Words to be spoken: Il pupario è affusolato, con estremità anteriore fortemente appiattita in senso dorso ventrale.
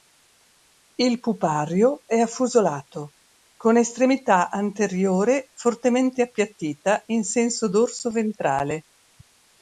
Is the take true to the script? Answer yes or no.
yes